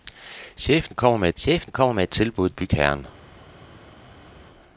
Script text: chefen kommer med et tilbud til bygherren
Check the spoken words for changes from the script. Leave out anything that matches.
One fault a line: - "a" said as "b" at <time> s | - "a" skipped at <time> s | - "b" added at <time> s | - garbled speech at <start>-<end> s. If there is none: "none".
- "chefen kommer med" added at 1.4 s
- "til" skipped at 2.5 s